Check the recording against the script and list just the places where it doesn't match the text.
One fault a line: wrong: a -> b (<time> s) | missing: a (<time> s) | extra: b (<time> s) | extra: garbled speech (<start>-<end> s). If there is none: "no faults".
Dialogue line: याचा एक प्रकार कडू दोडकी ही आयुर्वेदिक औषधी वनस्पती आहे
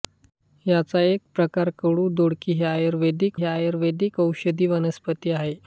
extra: ही आयुर्वेदिक (3.3 s)